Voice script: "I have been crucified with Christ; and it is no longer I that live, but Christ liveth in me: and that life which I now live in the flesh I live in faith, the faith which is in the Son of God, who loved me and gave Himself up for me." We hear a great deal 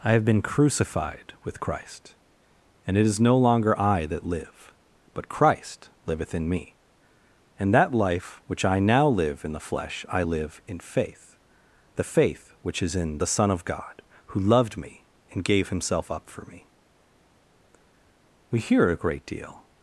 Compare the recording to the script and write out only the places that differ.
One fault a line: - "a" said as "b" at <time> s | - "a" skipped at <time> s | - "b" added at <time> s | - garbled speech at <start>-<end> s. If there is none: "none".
none